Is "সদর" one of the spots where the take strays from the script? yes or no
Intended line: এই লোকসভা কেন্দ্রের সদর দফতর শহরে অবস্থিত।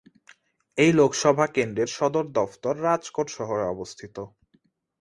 no